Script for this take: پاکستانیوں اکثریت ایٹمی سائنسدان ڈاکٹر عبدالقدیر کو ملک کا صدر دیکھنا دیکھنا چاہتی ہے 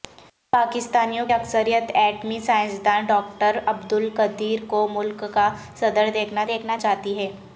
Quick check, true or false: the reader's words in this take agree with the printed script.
true